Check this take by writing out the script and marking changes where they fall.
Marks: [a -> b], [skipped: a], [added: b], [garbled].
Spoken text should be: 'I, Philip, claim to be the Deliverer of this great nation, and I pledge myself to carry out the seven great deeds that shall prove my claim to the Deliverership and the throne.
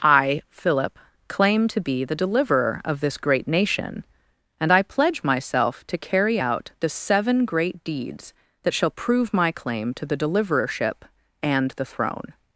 'I, Philip, claim to be the Deliverer of this great nation, and I pledge myself to carry out the seven great deeds that shall prove my claim to the Deliverership and the throne.